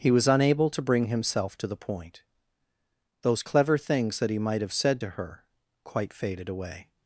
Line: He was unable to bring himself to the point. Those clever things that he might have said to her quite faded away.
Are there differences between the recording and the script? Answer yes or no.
no